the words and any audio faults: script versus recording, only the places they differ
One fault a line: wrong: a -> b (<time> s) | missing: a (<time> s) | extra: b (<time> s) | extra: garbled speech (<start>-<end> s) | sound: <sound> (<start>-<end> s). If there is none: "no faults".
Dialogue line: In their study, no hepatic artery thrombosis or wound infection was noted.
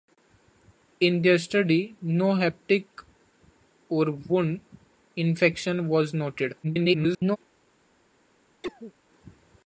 missing: artery thrombosis (2.9 s)
extra: garbled speech (6.6-7.4 s)
sound: cough (8.6-8.9 s)